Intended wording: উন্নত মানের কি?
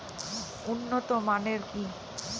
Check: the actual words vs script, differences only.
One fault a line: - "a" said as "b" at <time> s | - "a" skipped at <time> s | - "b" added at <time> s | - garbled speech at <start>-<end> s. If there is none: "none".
none